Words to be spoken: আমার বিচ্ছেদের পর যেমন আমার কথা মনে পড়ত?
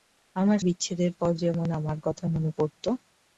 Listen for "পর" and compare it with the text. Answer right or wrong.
right